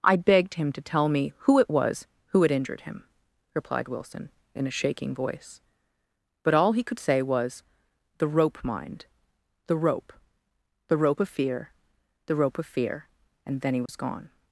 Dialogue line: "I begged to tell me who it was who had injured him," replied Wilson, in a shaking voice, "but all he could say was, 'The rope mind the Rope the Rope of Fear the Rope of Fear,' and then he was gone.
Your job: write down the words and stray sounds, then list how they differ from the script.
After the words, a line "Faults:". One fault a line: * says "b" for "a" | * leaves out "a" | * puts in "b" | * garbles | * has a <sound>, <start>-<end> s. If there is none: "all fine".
"I begged him to tell me who it was who had injured him," replied Wilson, in a shaking voice, "but all he could say was, 'The rope mind the Rope the Rope of Fear the Rope of Fear,' and then he was gone.
Faults:
* puts in "him"
* has a dropout, 13.9-13.9 s